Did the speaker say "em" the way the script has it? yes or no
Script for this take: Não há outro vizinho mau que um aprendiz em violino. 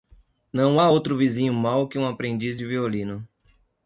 no